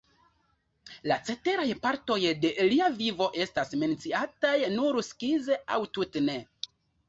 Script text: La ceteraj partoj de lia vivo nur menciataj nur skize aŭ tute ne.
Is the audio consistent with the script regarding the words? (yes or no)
no